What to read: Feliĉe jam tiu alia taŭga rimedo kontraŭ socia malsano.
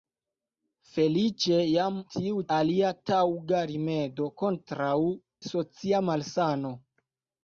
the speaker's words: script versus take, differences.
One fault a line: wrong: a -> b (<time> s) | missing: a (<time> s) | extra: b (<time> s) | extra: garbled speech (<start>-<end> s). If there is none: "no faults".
no faults